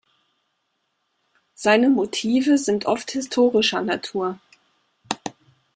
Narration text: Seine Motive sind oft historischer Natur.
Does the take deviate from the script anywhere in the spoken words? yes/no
no